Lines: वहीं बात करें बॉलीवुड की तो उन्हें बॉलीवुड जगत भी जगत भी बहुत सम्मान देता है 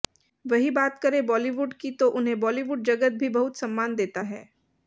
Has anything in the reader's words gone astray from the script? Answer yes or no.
yes